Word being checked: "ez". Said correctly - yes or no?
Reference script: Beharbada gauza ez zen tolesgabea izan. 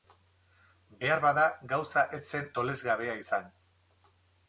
yes